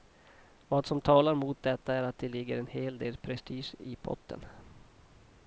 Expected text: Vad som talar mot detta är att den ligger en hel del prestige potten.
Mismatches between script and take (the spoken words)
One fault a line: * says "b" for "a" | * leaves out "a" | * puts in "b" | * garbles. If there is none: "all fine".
* says "det" for "den"
* puts in "i"